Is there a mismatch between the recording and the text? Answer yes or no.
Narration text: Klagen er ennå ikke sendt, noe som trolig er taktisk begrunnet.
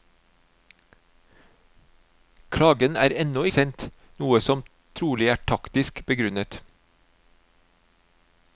yes